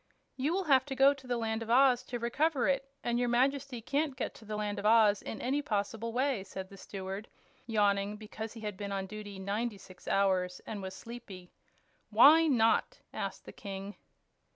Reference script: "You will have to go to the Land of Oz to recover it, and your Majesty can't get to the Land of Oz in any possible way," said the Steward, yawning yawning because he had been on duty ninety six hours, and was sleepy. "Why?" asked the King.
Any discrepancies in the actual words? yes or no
yes